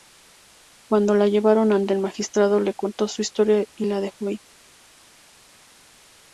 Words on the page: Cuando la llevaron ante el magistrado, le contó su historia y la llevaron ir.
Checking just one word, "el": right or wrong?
right